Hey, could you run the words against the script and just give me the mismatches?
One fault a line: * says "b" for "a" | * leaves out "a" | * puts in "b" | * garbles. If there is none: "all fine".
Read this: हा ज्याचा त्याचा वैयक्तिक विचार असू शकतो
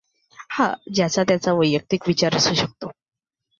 all fine